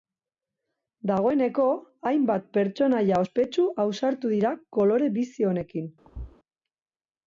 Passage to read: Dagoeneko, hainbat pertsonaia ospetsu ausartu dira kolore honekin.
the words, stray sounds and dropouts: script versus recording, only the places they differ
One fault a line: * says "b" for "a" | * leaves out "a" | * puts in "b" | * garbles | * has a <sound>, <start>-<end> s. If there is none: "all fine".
* puts in "bizi"
* has a thud, 6.0-6.4 s